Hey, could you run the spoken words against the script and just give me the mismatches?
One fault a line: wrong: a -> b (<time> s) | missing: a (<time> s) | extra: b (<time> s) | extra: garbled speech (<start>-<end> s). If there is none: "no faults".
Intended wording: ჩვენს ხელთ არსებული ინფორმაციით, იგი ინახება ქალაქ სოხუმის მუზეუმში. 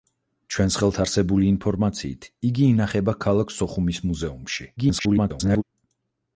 extra: garbled speech (4.8-5.6 s)